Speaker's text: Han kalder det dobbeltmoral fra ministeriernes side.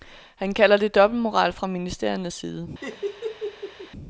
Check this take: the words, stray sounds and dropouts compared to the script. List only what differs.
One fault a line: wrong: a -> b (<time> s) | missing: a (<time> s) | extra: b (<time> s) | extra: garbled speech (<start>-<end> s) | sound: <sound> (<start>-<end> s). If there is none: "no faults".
sound: laugh (2.8-3.9 s)